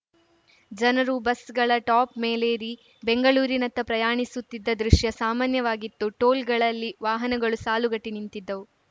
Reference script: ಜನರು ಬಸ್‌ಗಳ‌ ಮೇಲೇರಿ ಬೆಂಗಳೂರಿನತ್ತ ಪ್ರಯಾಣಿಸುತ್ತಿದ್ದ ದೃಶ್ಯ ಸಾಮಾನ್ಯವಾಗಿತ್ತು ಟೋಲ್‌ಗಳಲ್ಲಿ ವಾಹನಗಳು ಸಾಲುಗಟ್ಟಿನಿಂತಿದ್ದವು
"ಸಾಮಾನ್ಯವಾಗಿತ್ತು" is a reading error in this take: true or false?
false